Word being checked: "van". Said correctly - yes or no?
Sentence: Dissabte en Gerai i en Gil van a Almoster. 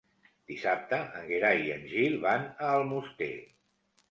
yes